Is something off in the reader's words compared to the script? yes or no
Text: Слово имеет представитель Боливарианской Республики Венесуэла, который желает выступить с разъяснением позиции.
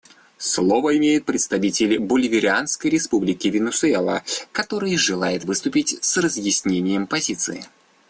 no